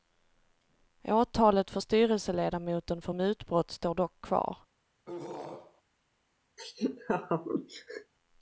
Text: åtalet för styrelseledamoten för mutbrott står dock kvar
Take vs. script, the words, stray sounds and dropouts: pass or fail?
fail